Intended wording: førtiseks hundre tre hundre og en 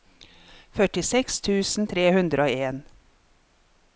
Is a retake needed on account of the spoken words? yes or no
yes